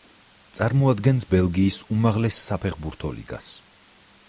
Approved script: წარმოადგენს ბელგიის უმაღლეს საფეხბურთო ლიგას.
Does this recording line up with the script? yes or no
yes